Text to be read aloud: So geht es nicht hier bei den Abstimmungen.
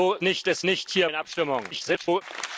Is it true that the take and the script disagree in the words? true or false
true